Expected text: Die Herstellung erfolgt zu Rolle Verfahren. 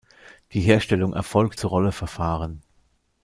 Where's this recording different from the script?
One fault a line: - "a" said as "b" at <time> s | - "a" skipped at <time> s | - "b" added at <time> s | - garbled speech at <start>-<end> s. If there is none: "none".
none